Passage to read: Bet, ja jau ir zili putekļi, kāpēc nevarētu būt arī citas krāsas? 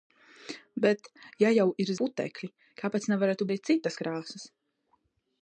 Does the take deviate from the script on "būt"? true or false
true